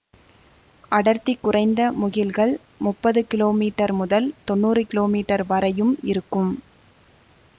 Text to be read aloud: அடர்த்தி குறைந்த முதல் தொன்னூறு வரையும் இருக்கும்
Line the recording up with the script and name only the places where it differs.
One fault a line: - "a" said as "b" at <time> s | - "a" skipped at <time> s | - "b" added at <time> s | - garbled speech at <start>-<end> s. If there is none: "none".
- "முகில்கள் முப்பது கிலோமீட்டர்" added at 2.0 s
- "கிலோமீட்டர்" added at 4.9 s